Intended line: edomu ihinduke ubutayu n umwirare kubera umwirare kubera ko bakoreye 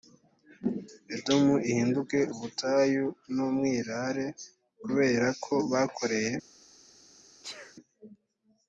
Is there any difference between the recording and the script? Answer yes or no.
yes